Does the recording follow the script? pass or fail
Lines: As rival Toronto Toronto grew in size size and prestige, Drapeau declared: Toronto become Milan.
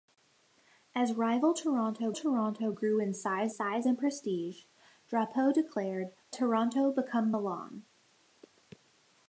pass